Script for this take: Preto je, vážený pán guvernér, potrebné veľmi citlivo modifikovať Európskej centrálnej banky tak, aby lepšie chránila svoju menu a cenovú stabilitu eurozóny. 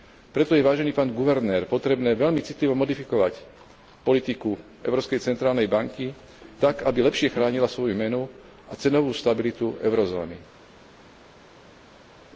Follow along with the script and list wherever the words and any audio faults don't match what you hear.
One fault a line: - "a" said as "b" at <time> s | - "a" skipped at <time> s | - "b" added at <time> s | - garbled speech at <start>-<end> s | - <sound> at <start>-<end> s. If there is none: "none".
- "politiku" added at 4.0 s